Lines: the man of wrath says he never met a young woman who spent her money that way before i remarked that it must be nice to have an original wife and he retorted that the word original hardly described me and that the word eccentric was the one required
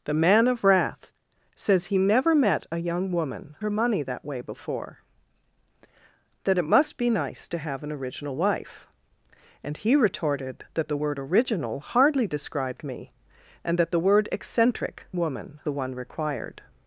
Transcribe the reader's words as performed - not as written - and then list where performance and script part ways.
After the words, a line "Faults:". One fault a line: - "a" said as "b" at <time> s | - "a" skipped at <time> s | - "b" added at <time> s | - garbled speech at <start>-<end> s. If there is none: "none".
the man of wrath says he never met a young woman her money that way before that it must be nice to have an original wife and he retorted that the word original hardly described me and that the word eccentric woman the one required
Faults:
- "who spent" skipped at 3.5 s
- "i remarked" skipped at 5.0 s
- "was" said as "woman" at 15.2 s